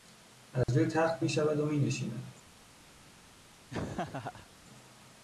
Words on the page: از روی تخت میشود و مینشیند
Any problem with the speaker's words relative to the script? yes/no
no